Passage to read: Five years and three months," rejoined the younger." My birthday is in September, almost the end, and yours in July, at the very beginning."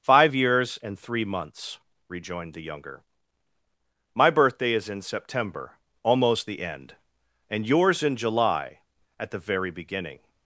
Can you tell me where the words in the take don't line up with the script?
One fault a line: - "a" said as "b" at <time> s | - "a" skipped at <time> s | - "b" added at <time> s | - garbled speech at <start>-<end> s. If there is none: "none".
none